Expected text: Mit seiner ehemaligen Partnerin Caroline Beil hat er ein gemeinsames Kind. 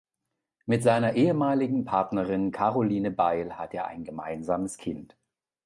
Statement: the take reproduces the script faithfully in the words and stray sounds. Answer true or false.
true